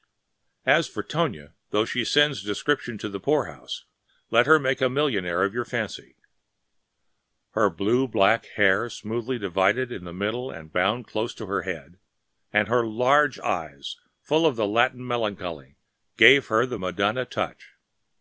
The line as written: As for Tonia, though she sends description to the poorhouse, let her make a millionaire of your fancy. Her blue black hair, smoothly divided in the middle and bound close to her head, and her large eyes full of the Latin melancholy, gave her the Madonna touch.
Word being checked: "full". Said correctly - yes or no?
yes